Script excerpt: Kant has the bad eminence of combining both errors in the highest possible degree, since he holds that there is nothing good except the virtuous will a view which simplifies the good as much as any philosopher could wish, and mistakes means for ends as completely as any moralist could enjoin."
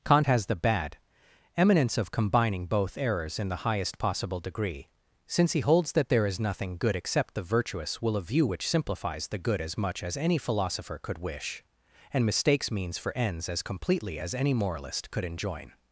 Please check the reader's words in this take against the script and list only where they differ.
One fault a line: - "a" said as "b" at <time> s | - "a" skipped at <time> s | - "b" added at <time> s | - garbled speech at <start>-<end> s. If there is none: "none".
none